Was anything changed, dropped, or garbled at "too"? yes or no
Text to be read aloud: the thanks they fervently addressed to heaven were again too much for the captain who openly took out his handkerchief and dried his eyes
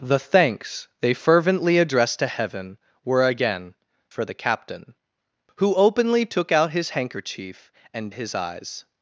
yes